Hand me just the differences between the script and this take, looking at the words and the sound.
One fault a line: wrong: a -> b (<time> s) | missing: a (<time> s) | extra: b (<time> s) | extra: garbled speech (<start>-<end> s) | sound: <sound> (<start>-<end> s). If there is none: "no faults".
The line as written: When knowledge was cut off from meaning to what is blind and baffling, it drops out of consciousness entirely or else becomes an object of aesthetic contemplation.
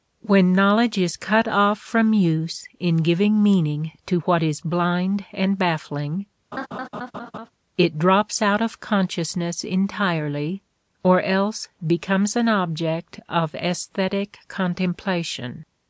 wrong: was -> is (1.0 s)
extra: use in giving (2.1 s)
sound: laugh (6.5-7.5 s)